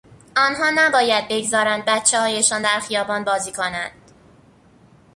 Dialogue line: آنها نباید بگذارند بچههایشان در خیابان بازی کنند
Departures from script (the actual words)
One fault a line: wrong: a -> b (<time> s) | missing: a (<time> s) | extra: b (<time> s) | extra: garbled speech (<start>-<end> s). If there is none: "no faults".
no faults